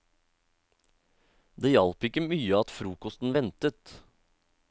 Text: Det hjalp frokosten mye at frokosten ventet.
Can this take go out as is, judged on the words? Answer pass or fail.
fail